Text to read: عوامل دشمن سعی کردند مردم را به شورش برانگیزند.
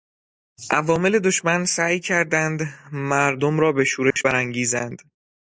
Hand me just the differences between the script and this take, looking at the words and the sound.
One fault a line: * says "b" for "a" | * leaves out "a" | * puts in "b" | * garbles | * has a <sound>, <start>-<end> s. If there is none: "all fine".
* has a dropout, 4.1-4.2 s